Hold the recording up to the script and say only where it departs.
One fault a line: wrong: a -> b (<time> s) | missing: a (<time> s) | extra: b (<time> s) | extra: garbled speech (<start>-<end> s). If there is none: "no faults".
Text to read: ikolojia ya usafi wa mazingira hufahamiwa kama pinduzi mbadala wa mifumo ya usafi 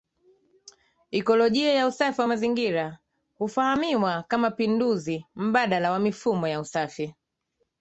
no faults